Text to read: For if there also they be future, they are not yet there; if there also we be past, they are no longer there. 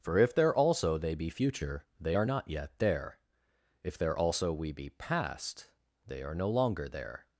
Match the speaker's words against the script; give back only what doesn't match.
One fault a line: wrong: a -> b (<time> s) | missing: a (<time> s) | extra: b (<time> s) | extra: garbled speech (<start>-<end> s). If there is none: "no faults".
no faults